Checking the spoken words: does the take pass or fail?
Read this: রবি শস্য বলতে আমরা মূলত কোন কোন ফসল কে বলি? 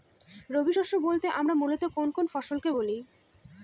pass